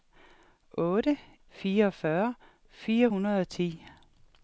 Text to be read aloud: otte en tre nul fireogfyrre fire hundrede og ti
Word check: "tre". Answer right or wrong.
wrong